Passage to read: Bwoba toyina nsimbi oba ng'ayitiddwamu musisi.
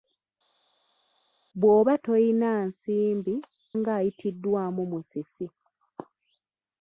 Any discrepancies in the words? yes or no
yes